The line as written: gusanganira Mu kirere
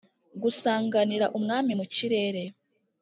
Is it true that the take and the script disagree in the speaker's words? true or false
true